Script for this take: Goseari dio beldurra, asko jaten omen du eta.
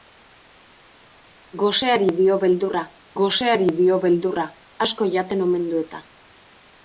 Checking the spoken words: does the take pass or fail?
fail